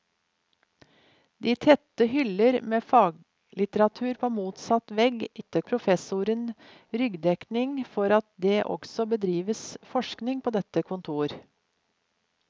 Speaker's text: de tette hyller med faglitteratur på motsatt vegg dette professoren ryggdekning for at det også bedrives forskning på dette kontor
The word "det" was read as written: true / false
true